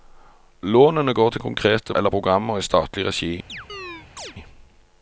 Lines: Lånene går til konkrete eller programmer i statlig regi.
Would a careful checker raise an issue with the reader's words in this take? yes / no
no